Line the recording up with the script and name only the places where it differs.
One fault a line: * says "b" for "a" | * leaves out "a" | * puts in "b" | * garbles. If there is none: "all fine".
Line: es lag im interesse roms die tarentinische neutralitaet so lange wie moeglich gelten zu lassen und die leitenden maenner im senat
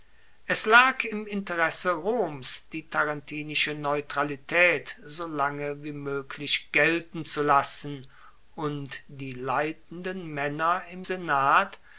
all fine